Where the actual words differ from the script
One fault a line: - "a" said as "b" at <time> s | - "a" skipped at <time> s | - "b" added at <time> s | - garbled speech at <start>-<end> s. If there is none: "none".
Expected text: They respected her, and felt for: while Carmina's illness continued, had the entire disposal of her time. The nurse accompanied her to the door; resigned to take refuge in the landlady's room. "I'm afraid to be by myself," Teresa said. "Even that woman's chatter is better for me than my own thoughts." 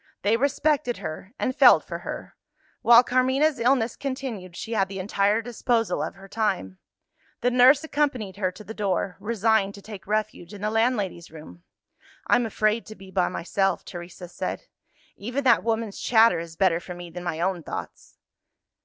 - "her" added at 2.0 s
- "she" added at 4.5 s